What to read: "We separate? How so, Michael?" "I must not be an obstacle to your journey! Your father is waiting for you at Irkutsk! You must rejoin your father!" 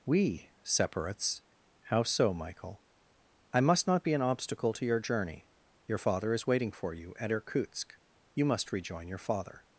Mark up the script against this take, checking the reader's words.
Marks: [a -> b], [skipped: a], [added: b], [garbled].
"We [separate? -> separates] How so, Michael?" "I must not be an obstacle to your journey! Your father is waiting for you at Irkutsk! You must rejoin your father!"